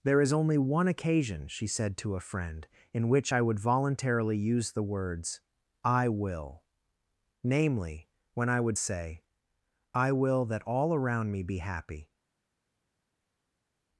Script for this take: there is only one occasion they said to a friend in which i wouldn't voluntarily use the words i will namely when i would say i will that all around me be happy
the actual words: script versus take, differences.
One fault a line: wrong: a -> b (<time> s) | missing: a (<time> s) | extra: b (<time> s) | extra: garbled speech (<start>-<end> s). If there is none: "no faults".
wrong: they -> she (1.5 s)
wrong: wouldn't -> would (3.4 s)